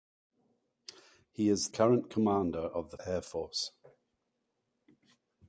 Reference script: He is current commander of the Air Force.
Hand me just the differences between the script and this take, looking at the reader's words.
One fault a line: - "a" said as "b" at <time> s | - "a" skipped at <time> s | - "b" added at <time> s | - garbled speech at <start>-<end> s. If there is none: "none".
none